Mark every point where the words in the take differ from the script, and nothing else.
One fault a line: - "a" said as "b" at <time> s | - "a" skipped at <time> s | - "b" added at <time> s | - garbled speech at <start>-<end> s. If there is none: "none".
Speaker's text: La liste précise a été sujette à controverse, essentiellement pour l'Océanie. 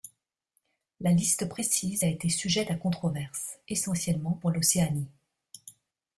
none